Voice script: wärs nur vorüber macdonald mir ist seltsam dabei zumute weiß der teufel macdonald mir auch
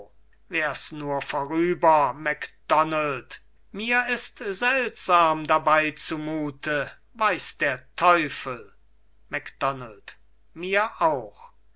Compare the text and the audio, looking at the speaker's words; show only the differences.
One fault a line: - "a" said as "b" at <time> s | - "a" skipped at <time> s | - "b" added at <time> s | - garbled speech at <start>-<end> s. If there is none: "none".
none